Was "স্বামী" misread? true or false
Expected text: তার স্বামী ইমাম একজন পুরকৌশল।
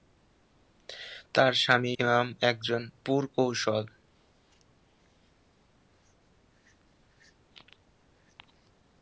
false